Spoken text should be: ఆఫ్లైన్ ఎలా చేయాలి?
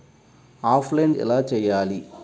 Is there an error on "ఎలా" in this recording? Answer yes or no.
no